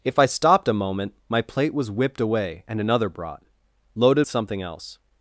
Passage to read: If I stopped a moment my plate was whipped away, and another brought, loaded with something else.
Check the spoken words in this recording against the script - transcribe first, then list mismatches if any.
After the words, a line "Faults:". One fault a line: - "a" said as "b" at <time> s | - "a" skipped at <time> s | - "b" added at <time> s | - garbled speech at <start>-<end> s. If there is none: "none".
If I stopped a moment my plate was whipped away, and another brought, loaded something else.
Faults:
- "with" skipped at 4.2 s